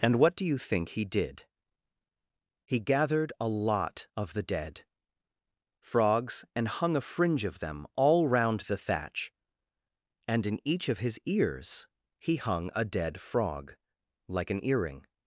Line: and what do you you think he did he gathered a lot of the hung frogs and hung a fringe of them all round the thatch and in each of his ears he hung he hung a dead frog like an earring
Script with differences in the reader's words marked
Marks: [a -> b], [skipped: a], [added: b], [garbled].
and what do you [skipped: you] think he did he gathered a lot of the [hung -> dead] frogs and hung a fringe of them all round the thatch and in each of his ears he hung [skipped: he hung] a dead frog like an earring